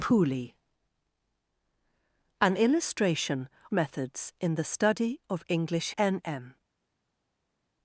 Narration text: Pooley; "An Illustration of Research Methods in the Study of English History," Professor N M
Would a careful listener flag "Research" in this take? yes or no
yes